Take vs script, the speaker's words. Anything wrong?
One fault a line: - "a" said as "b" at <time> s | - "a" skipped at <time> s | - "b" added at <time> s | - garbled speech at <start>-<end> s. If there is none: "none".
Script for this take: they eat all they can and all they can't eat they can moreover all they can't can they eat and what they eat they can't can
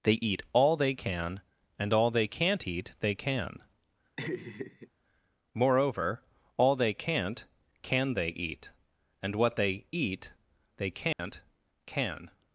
none